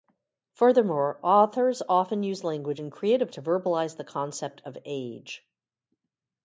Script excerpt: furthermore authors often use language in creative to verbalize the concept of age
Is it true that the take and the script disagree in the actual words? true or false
false